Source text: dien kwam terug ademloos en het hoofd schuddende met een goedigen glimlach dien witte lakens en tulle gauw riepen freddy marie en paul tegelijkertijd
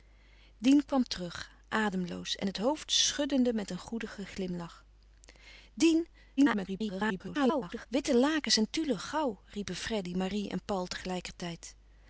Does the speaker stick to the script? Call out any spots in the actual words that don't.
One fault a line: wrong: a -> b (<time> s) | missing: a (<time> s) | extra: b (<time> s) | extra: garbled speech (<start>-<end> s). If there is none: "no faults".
extra: garbled speech (6.4-7.9 s)